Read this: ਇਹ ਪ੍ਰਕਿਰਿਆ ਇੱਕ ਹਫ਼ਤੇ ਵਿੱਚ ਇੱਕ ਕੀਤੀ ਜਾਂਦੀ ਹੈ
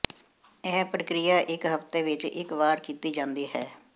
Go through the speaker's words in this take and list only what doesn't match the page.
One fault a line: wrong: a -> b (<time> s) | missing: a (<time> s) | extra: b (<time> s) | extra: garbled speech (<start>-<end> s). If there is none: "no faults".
extra: ਵਾਰ (2.5 s)